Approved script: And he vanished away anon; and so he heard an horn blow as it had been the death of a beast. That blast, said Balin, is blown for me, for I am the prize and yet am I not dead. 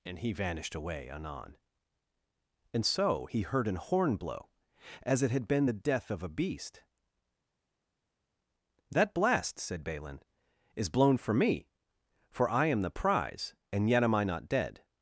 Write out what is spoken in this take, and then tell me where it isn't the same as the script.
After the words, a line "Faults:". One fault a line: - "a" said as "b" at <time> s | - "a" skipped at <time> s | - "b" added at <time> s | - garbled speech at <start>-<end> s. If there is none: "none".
And he vanished away anon; and so he heard an horn blow as it had been the death of a beast. That blast, said Balin, is blown for me, for I am the prize and yet am I not dead.
Faults:
none